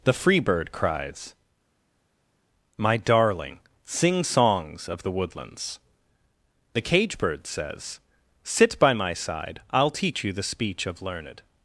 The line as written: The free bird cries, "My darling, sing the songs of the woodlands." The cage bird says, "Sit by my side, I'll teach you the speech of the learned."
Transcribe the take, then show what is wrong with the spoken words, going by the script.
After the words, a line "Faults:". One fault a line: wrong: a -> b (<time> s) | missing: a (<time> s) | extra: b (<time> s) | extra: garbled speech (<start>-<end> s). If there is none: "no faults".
The free bird cries, "My darling, sing songs of the woodlands." The cage bird says, "Sit by my side, I'll teach you the speech of learned."
Faults:
missing: the (4.2 s)
missing: the (11.0 s)